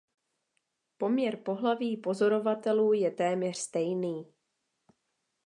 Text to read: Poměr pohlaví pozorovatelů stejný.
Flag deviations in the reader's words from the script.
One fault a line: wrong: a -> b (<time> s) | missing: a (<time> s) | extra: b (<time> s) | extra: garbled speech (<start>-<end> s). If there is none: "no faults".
extra: je téměř (2.9 s)